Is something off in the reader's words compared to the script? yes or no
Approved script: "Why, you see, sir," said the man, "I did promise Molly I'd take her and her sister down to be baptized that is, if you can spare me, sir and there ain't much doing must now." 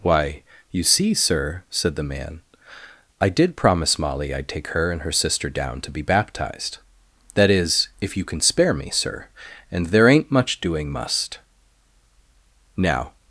no